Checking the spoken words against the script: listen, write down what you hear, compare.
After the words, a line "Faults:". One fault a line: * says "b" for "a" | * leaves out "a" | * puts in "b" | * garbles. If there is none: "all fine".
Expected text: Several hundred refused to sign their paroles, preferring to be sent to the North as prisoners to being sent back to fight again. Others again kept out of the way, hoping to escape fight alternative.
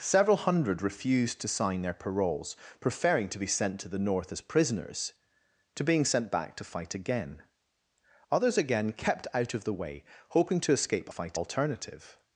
Several hundred refused to sign their paroles, preferring to be sent to the North as prisoners to being sent back to fight again. Others again kept out of the way, hoping to escape fight alternative.
Faults:
all fine